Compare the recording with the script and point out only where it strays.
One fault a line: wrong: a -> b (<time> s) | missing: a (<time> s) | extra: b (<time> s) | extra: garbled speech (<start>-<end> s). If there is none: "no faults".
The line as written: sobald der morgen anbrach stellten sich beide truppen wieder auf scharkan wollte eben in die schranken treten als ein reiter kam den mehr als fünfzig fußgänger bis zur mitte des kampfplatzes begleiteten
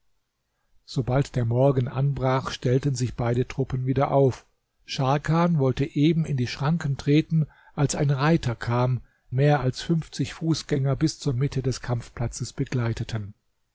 missing: den (9.0 s)